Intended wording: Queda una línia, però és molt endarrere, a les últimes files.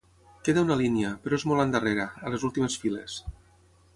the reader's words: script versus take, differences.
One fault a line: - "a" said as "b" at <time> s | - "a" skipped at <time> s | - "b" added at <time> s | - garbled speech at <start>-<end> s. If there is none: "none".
none